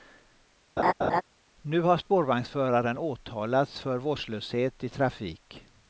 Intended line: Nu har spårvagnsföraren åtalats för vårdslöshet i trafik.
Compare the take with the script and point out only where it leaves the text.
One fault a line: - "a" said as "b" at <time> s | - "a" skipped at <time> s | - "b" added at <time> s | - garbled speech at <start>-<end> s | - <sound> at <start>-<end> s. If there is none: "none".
- laugh at 0.8-1.2 s